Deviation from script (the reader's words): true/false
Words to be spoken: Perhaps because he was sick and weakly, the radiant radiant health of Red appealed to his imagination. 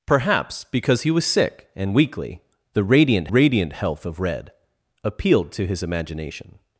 false